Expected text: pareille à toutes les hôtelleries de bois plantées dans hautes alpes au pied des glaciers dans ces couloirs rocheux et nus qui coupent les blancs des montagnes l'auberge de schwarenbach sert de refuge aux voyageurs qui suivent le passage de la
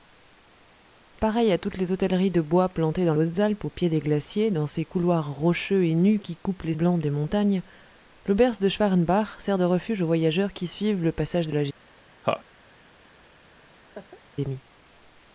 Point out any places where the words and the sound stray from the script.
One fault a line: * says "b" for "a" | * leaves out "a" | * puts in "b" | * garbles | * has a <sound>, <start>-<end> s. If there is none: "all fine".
* has a laugh, 12.2-12.4 s
* has a laugh, 13.7-14.2 s